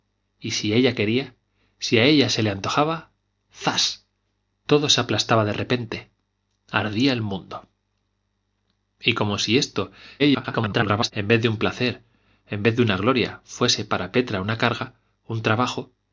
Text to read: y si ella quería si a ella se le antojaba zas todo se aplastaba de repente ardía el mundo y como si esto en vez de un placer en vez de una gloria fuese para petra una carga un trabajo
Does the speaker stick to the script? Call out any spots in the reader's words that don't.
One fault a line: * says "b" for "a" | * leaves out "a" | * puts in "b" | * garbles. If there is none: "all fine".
* garbles